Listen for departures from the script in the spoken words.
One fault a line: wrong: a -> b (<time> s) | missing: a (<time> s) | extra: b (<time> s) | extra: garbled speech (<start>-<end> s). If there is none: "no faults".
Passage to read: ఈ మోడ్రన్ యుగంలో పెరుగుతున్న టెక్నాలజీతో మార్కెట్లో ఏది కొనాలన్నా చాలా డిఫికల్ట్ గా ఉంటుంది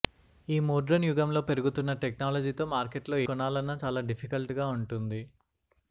missing: ఏది (3.2 s)